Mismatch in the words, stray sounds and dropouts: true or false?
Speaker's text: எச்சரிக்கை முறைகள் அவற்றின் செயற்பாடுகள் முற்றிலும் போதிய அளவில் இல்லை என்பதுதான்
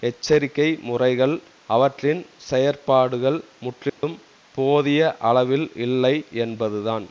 true